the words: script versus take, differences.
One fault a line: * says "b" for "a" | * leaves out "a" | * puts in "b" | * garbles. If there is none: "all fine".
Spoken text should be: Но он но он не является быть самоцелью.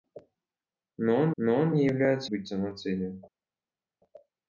all fine